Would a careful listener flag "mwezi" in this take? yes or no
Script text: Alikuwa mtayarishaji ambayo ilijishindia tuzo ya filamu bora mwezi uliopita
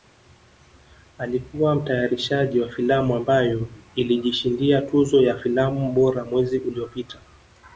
no